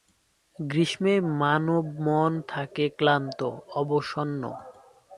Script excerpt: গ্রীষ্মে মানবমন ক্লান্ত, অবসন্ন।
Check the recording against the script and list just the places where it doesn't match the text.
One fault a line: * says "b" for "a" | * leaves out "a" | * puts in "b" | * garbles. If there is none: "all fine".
* puts in "থাকে"